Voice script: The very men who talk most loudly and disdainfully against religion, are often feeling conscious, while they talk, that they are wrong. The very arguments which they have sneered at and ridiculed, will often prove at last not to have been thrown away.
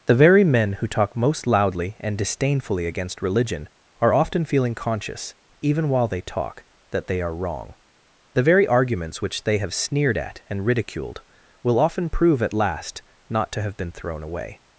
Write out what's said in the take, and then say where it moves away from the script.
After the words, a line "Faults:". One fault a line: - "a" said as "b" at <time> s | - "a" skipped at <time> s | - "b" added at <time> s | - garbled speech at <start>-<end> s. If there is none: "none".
The very men who talk most loudly and disdainfully against religion, are often feeling conscious, even while they talk, that they are wrong. The very arguments which they have sneered at and ridiculed, will often prove at last not to have been thrown away.
Faults:
- "even" added at 5.6 s